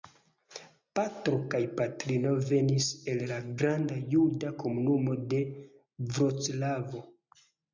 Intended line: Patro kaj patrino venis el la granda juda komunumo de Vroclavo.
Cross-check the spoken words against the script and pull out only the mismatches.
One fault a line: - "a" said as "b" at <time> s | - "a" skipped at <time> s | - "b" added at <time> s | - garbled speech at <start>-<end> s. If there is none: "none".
none